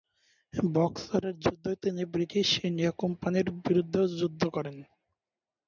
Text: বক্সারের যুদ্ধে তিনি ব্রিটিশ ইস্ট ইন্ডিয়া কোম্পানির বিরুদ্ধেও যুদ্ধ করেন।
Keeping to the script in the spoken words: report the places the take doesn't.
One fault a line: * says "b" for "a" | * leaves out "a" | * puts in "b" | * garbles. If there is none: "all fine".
* leaves out "ইস্ট"